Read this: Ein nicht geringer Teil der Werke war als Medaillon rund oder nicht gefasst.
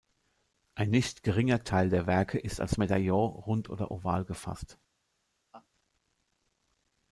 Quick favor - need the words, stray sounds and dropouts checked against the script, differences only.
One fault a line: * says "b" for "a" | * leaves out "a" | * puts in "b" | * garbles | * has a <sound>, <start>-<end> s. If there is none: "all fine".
* says "ist" for "war"
* says "oval" for "nicht"
* has a laugh, 5.5-5.7 s